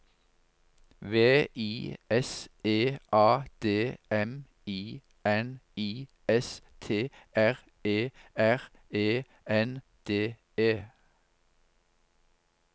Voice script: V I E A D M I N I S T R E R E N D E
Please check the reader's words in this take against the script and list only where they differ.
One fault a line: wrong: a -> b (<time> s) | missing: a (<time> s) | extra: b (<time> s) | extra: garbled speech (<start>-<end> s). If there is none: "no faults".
extra: S (2.1 s)